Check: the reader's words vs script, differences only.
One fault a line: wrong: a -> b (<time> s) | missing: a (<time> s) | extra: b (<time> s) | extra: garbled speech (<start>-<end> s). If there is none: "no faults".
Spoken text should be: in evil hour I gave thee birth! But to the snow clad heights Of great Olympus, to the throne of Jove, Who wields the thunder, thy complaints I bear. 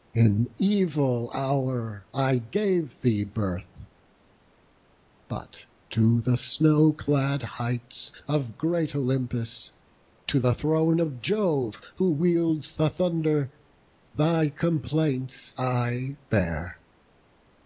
no faults